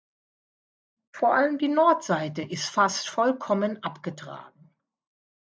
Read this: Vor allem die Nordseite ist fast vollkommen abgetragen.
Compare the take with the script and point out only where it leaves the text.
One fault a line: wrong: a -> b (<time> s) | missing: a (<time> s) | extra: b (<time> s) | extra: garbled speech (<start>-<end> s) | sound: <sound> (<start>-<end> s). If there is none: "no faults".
no faults